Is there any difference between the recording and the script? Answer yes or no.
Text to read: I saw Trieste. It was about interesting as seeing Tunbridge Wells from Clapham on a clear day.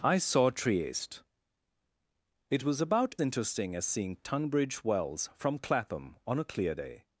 no